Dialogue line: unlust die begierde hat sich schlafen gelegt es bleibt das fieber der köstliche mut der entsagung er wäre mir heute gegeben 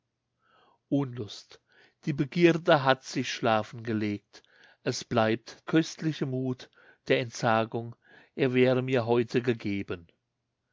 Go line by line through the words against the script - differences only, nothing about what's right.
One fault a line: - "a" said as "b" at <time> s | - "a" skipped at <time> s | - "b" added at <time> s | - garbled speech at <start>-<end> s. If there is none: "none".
- "das fieber der" skipped at 5.6 s